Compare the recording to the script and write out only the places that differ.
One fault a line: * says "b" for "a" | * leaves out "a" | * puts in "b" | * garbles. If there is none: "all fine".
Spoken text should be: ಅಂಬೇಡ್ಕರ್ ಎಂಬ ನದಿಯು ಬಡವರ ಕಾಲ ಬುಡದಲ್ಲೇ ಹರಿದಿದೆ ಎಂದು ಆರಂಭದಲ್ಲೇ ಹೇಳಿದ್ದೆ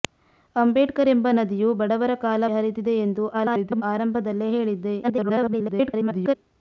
* leaves out "ಬುಡದಲ್ಲೇ"
* garbles
* garbles